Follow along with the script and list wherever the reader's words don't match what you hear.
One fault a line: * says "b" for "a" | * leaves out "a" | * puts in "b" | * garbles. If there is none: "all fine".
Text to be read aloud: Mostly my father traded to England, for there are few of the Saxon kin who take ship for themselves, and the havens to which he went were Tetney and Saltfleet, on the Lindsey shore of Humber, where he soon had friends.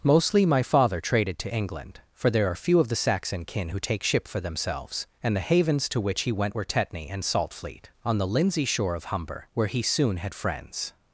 all fine